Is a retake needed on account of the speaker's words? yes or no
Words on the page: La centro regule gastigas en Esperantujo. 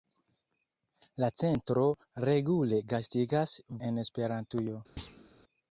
no